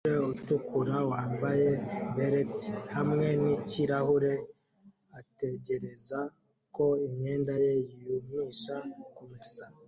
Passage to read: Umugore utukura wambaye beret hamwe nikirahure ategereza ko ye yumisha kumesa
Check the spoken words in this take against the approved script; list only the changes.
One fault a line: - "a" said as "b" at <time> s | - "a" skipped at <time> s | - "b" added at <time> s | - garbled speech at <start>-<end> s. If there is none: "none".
- "imyenda" added at 7.1 s